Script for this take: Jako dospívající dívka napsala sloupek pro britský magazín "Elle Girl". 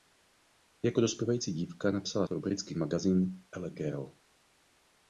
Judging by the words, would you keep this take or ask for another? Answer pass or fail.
fail